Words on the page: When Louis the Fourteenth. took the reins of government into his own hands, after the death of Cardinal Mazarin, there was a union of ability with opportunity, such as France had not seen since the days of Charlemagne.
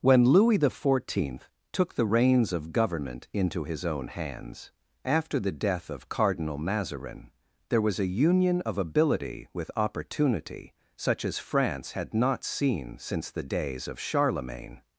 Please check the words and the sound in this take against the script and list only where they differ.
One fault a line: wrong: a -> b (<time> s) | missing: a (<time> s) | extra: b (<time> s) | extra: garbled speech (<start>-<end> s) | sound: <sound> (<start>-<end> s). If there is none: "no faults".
no faults